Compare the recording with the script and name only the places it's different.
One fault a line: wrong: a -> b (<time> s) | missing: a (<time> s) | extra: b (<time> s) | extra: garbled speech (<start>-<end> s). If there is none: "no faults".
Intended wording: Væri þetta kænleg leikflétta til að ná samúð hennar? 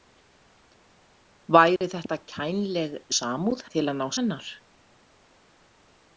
wrong: leikflétta -> samúð (3.2 s)
missing: samúð (4.1 s)